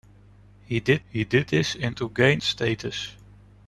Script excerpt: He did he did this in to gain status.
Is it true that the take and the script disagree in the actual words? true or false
false